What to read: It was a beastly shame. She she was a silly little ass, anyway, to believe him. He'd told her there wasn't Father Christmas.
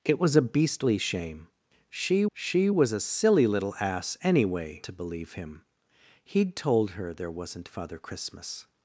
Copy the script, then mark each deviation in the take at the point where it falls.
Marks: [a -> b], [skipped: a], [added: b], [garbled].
It was a beastly shame. She she was a silly little ass, anyway, to believe him. He'd told her there wasn't Father Christmas.